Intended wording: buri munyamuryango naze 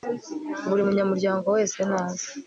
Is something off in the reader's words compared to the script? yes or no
yes